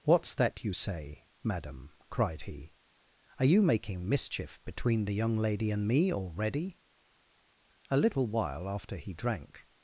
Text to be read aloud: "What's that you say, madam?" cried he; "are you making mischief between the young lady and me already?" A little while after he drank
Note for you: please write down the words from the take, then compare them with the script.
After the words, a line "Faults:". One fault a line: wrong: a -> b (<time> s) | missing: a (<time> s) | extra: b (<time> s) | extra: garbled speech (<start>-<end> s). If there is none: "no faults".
"What's that you say, madam?" cried he; "are you making mischief between the young lady and me already?" A little while after he drank
Faults:
no faults